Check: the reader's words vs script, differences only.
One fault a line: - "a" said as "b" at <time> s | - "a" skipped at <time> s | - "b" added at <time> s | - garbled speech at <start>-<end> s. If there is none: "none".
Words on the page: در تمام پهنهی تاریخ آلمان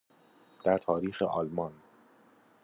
- "تمام پهنهی" skipped at 0.8 s